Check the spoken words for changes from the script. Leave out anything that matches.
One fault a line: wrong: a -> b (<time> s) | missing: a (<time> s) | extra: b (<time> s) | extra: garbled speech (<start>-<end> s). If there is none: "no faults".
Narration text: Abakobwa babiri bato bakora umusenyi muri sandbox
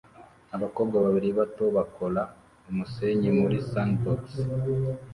no faults